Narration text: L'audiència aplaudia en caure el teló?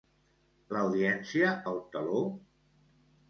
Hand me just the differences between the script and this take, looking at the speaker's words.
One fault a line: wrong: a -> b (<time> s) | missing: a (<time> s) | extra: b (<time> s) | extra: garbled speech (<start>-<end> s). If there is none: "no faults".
missing: aplaudia en caure (1.5 s)